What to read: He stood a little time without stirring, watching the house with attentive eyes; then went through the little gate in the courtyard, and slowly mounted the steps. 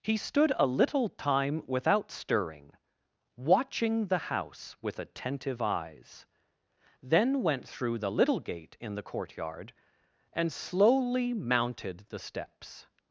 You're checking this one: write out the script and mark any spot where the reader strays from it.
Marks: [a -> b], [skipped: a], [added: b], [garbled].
He stood a little time without stirring, watching the house with attentive eyes; then went through the little gate in the courtyard, and slowly mounted the steps.